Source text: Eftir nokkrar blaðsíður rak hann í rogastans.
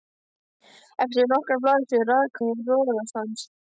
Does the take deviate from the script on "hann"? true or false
true